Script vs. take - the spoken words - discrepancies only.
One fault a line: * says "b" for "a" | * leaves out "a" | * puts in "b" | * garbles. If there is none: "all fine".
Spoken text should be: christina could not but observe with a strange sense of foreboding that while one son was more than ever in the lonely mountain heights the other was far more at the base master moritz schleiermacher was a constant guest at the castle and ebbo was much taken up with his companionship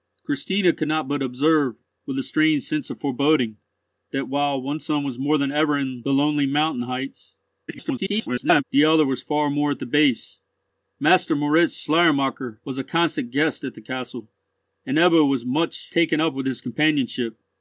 * garbles